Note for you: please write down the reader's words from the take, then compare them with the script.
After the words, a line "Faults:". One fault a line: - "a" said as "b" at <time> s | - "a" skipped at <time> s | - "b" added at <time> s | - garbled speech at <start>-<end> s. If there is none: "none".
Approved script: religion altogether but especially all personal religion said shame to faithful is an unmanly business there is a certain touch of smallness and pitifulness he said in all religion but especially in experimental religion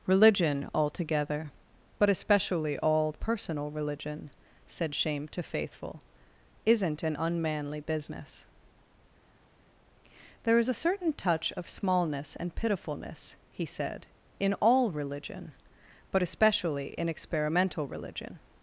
religion altogether but especially all personal religion said shame to faithful isn't an unmanly business there is a certain touch of smallness and pitifulness he said in all religion but especially in experimental religion
Faults:
- "is" said as "isn't" at 6.7 s